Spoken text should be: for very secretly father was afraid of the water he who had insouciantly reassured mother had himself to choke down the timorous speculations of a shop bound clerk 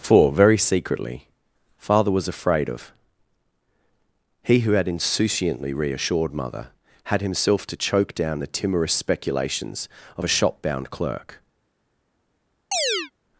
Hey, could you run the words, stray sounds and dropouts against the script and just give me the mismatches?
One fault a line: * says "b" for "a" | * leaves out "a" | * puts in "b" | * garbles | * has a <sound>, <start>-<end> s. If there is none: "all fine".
* leaves out "the water"
* has a chirp, 12.7-13.1 s